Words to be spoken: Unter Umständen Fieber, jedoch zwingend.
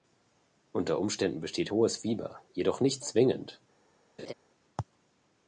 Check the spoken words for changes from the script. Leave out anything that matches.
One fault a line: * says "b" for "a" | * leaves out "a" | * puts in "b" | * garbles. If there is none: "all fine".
* puts in "besteht hohes"
* puts in "nicht"